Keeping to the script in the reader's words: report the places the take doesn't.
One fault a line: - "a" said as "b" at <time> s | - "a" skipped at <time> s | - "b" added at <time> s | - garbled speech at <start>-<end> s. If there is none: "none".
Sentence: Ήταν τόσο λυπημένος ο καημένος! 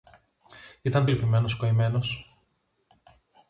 - "τόσο" skipped at 1.1 s